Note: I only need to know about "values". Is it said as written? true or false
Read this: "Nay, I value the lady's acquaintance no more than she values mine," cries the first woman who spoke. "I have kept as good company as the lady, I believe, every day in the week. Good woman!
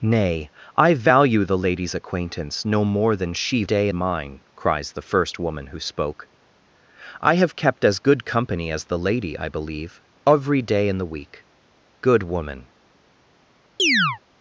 false